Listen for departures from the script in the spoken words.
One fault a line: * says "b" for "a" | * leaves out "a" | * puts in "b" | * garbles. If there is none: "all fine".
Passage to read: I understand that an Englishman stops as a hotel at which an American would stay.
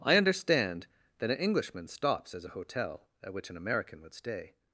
all fine